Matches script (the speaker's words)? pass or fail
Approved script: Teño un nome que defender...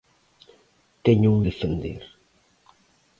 fail